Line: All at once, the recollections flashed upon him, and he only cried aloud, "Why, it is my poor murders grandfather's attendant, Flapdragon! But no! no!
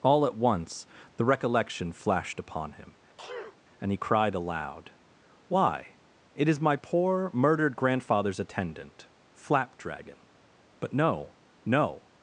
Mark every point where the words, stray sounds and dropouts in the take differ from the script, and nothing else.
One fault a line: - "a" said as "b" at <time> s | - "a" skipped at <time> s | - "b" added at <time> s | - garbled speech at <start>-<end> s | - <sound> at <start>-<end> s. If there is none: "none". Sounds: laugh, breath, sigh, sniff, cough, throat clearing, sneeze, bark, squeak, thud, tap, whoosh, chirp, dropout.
- "recollections" said as "recollection" at 1.2 s
- sneeze at 3.2-3.6 s
- "only" skipped at 4.0 s
- "murders" said as "murdered" at 7.3 s